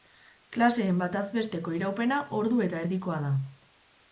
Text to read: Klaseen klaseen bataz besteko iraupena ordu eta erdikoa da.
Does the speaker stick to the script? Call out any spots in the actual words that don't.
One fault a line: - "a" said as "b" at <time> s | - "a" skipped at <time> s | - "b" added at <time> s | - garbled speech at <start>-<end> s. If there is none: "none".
- "klaseen" skipped at 1.0 s